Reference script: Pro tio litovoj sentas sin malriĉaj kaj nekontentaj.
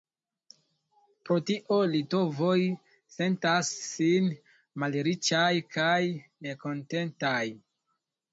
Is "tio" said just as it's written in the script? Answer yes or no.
yes